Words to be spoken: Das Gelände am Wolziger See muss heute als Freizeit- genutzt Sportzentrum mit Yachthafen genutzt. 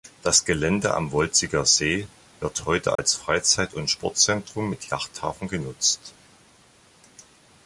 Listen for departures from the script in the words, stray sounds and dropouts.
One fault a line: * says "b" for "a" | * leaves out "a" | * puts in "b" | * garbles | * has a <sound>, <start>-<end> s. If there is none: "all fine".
* says "wird" for "muss"
* has a dropout, 3.0-3.0 s
* says "und" for "genutzt"